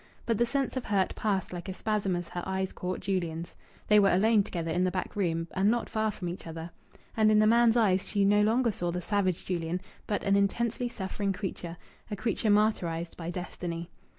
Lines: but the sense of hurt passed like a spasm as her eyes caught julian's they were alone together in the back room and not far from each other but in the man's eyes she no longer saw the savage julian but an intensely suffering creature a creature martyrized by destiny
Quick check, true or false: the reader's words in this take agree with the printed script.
false